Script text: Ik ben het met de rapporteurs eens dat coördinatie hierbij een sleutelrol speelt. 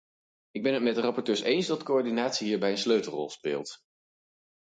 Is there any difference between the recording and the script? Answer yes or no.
no